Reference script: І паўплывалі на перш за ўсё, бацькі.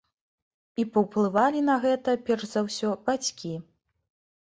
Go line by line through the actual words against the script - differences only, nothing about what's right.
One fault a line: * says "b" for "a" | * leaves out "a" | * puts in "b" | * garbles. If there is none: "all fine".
* puts in "гэта"